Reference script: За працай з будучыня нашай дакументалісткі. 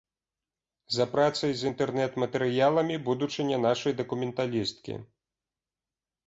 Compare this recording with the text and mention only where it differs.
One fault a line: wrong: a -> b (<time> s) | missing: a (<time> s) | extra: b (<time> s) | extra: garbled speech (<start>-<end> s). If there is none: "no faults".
extra: інтэрнэт матэрыяламі (1.7 s)